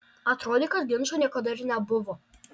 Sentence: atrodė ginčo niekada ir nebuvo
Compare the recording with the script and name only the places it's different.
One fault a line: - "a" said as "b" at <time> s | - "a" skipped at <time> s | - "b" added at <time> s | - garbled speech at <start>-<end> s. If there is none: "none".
- "kad" added at 0.8 s